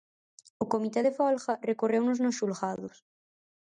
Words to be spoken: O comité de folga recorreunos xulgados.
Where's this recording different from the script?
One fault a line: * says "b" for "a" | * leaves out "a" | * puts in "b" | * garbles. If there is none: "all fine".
* puts in "nos"